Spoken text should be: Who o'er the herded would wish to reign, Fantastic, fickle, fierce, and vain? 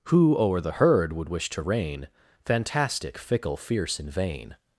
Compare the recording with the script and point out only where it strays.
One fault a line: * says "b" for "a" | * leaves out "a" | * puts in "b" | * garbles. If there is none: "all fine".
* says "herd" for "herded"